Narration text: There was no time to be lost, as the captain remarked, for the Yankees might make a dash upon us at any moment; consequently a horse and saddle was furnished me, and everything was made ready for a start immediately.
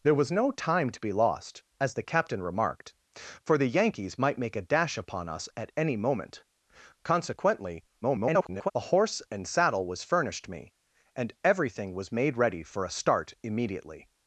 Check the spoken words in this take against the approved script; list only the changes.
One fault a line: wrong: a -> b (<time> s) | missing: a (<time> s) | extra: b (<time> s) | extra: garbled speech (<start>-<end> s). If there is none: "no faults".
extra: garbled speech (8.0-8.7 s)